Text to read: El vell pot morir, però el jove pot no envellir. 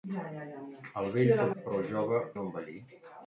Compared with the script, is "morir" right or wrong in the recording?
wrong